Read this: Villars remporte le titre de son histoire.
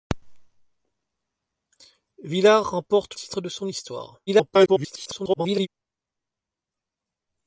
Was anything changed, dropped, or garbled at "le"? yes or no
yes